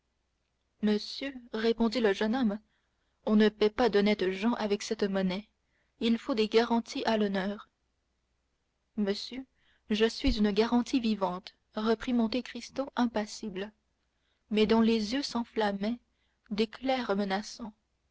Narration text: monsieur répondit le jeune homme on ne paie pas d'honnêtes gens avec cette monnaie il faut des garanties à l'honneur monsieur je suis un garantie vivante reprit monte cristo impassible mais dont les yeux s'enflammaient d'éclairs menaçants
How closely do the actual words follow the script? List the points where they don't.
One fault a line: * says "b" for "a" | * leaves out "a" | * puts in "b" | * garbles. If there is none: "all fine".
* says "une" for "un"